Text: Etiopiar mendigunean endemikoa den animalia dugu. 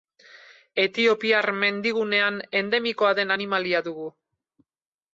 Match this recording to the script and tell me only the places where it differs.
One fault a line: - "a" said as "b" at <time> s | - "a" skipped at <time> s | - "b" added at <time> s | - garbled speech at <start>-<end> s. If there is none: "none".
none